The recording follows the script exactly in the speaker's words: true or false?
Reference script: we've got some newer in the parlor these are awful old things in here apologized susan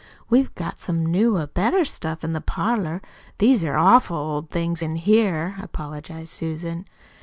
false